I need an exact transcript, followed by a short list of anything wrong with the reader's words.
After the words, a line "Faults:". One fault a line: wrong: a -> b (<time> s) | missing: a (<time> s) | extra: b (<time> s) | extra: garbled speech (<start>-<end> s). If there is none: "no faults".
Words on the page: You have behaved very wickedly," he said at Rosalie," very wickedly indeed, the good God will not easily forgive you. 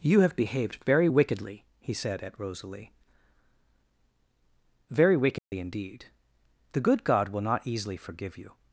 You have behaved very wickedly," he said at Rosalie," very wickedly indeed, the good God will not easily forgive you.
Faults:
no faults